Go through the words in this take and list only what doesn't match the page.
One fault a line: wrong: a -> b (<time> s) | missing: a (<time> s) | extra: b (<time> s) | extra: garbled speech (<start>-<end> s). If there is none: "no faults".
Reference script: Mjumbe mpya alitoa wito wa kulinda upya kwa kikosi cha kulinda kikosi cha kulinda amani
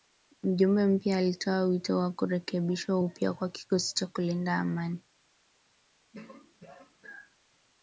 wrong: kulinda -> kurekebishwa (2.1 s)
missing: kikosi cha kulinda (4.5 s)